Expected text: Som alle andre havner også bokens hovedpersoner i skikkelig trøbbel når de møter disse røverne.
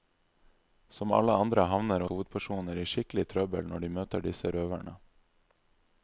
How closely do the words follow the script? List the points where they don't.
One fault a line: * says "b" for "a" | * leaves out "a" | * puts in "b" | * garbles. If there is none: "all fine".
* leaves out "også bokens"